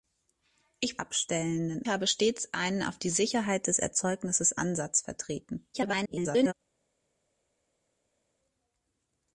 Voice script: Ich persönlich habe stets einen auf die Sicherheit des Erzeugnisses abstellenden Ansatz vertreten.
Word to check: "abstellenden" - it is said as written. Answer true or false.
false